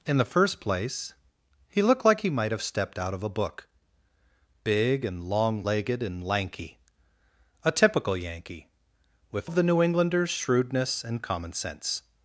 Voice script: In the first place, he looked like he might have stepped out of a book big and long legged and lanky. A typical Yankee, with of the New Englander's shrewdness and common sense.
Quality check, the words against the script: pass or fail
pass